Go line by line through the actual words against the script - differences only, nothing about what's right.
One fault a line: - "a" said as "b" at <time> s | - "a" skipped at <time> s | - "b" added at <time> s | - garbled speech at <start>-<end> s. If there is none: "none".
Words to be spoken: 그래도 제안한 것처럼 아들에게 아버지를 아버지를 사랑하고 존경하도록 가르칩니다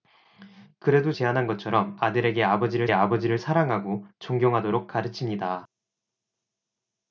none